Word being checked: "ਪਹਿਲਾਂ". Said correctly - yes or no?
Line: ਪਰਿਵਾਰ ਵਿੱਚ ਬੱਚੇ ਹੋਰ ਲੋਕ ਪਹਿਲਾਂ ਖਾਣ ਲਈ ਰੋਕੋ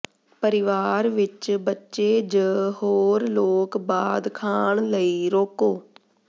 no